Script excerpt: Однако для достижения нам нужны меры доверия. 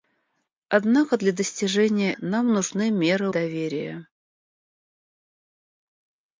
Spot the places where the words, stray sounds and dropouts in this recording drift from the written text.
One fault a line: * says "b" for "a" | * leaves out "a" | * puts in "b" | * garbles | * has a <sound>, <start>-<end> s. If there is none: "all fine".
all fine